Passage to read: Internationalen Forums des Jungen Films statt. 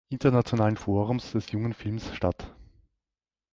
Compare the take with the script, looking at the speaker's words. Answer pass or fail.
pass